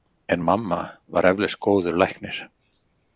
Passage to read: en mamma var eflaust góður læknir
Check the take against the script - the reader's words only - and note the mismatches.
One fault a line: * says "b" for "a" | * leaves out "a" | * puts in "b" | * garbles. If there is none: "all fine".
all fine